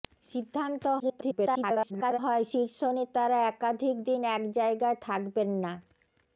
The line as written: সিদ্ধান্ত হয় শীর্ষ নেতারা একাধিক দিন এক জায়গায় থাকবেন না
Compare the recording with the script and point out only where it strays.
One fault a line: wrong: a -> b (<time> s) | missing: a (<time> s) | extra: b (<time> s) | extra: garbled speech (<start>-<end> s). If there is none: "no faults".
extra: garbled speech (1.0-2.2 s)